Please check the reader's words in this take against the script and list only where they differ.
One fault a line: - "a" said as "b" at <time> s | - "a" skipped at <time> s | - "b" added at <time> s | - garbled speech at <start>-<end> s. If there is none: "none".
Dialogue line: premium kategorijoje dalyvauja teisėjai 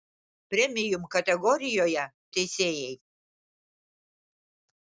- "dalyvauja" skipped at 2.1 s